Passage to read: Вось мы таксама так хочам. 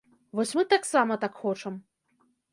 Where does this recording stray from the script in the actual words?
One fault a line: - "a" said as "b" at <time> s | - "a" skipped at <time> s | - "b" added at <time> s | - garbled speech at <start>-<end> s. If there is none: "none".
none